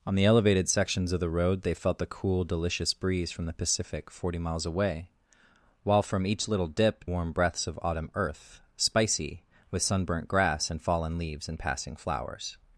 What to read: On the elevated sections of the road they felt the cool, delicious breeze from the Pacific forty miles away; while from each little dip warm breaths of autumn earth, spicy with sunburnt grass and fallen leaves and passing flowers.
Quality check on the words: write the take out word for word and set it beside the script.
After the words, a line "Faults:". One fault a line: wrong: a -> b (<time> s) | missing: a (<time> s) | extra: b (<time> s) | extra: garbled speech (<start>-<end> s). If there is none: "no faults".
On the elevated sections of the road they felt the cool, delicious breeze from the Pacific forty miles away; while from each little dip warm breaths of autumn earth, spicy with sunburnt grass and fallen leaves and passing flowers.
Faults:
no faults